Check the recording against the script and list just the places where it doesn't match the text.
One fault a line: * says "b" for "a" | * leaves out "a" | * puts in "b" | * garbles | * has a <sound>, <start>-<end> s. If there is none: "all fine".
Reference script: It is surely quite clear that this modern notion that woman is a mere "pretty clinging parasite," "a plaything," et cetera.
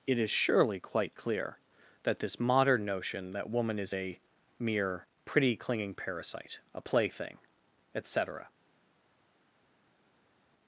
all fine